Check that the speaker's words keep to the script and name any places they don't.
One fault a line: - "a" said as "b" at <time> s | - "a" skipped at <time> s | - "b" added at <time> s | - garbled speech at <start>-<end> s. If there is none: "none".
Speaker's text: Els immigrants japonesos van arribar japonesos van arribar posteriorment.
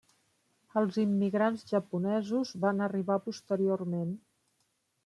- "japonesos van arribar" skipped at 3.2 s